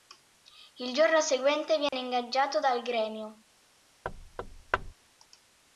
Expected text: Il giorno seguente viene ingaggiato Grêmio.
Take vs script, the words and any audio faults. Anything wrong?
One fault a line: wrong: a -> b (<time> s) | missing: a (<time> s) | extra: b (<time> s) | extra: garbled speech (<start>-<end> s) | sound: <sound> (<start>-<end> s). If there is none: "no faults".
sound: dropout (1.9-1.9 s)
extra: dal (2.6 s)
sound: thud (4.0-4.9 s)